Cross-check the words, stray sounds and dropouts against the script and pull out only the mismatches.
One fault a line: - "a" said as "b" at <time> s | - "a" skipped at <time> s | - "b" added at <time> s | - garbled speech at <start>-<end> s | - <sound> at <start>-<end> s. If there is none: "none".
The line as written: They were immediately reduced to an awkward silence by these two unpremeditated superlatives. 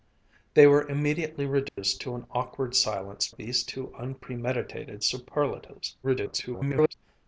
- dropout at 1.7-1.8 s
- "by" skipped at 3.3 s
- garbled speech at 6.0-6.9 s